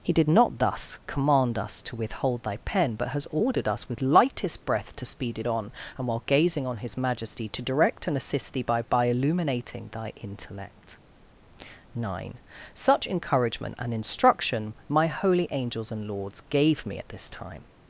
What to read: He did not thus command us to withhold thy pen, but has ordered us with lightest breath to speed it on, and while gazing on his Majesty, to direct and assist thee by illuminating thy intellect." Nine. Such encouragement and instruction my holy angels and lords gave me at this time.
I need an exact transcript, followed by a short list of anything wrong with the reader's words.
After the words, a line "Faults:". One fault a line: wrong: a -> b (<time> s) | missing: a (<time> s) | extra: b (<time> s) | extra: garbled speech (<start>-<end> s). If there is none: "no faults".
He did not thus command us to withhold thy pen, but has ordered us with lightest breath to speed it on, and while gazing on his Majesty, to direct and assist thee by by illuminating thy intellect." Nine. Such encouragement and instruction my holy angels and lords gave me at this time.
Faults:
extra: by (8.8 s)